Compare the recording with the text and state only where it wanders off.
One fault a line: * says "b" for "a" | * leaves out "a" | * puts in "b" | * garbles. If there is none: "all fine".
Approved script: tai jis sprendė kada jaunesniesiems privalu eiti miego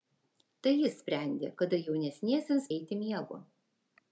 * leaves out "privalu"